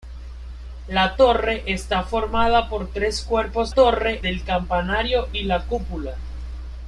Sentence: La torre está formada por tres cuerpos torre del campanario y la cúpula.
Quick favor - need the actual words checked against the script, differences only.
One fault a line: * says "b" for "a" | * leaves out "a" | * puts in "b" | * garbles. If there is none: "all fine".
all fine